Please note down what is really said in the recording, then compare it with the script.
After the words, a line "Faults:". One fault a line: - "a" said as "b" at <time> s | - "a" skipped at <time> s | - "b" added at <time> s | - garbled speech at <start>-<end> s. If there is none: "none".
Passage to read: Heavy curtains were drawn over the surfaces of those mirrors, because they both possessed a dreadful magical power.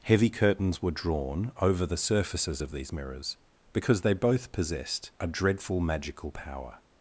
Heavy curtains were drawn over the surfaces of these mirrors, because they both possessed a dreadful magical power.
Faults:
- "those" said as "these" at 2.7 s